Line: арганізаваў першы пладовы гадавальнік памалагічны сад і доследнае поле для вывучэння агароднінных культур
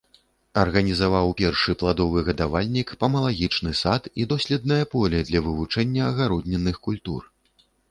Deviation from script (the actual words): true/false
false